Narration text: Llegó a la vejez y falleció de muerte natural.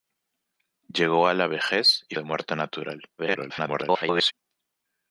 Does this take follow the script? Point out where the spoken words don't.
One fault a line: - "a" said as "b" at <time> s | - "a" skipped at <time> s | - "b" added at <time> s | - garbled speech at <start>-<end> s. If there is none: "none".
- "falleció" skipped at 2.1 s
- garbled speech at 3.2-4.3 s